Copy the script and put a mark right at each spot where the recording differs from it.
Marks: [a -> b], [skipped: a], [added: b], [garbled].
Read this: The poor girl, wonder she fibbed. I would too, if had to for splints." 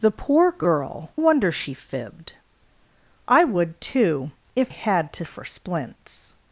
The poor girl, wonder she fibbed. I would too, if had to for splints."